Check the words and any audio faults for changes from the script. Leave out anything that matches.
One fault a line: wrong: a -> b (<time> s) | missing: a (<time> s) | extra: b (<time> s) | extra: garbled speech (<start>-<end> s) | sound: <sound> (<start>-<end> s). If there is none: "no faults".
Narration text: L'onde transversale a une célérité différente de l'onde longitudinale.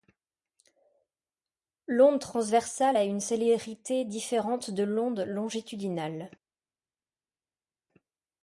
no faults